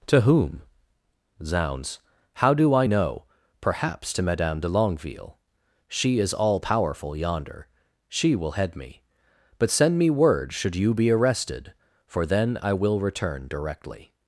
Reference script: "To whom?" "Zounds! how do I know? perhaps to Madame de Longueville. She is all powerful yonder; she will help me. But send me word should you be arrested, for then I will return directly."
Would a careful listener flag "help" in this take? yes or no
yes